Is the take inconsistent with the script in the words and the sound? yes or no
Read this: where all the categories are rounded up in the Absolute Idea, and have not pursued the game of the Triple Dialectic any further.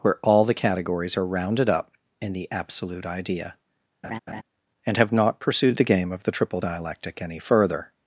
yes